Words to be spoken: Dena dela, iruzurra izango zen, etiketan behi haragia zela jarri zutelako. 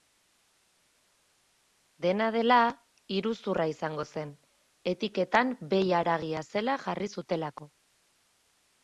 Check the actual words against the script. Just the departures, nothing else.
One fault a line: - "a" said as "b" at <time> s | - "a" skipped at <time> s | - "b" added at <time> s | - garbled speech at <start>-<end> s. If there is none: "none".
none